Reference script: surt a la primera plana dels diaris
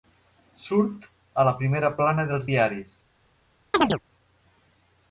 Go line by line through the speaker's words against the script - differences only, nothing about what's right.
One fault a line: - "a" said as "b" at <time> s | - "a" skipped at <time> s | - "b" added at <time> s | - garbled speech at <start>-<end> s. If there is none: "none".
none